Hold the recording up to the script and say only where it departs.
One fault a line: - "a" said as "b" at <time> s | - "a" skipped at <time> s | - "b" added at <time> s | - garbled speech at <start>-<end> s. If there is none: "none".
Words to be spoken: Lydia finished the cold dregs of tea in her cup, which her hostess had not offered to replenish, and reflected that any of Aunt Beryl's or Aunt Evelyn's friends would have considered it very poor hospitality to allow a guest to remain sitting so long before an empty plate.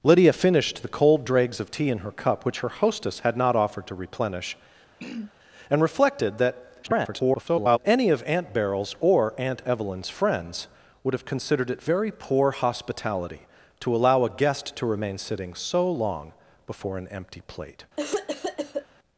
- garbled speech at 6.8-7.8 s